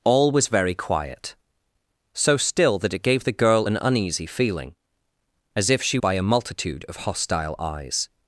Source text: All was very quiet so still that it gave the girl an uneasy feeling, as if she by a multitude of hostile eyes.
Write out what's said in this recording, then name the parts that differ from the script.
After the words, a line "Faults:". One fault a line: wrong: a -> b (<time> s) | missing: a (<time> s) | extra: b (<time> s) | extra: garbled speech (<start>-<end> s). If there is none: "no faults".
All was very quiet so still that it gave the girl an uneasy feeling, as if she by a multitude of hostile eyes.
Faults:
no faults